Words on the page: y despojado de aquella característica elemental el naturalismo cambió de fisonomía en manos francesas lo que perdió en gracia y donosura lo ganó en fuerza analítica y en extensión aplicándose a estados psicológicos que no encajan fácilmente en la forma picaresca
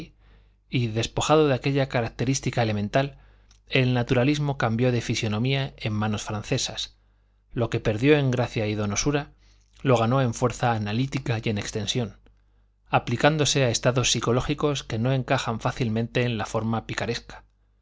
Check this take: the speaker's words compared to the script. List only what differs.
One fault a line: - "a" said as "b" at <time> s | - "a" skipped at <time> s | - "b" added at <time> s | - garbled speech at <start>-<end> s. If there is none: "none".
none